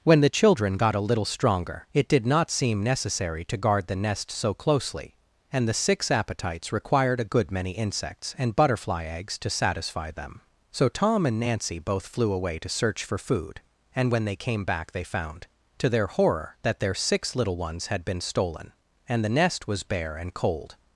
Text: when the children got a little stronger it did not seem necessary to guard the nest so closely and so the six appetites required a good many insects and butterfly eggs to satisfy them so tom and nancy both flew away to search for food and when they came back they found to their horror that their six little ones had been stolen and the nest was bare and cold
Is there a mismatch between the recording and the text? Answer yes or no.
yes